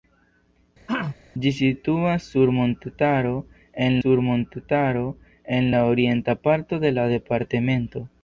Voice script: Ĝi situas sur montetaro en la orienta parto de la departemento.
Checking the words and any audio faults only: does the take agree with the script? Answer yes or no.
no